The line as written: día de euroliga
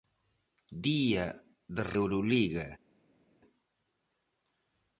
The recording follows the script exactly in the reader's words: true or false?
true